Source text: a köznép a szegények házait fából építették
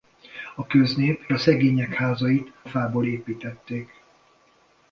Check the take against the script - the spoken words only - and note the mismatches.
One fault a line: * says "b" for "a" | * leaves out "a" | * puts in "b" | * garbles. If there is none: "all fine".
all fine